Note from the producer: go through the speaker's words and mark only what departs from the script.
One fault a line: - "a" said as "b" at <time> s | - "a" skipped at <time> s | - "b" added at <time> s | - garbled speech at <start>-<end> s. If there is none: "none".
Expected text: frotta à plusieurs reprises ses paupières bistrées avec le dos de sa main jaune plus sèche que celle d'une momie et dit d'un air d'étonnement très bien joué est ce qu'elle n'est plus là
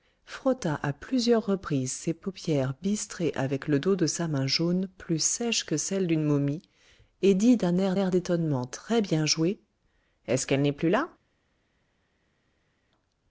- "air" added at 7.9 s